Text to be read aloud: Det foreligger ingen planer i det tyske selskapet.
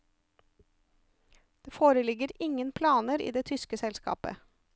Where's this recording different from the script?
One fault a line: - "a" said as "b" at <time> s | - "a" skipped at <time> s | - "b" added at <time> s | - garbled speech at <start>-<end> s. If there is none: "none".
none